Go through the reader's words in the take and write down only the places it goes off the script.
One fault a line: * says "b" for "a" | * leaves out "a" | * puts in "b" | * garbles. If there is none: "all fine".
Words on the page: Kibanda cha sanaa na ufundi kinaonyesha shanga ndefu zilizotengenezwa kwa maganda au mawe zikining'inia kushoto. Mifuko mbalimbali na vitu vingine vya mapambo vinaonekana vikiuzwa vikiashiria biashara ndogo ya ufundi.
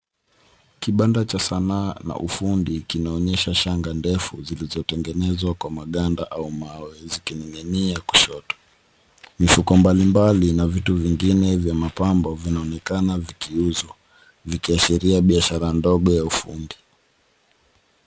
all fine